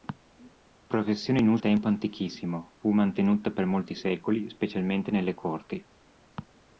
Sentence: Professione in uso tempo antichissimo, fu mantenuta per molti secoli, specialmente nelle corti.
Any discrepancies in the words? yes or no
no